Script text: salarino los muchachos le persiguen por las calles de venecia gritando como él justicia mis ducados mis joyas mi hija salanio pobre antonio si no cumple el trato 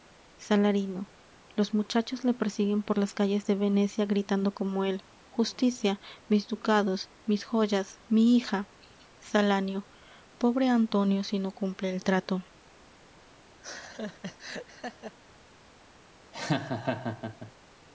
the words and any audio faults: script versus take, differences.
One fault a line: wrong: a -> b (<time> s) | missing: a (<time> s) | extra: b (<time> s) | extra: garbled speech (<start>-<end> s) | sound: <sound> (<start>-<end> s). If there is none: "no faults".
sound: laugh (13.6-15.2 s)
sound: laugh (16.3-17.5 s)